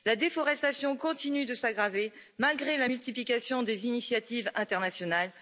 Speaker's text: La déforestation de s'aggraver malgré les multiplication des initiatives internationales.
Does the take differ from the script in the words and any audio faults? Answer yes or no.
yes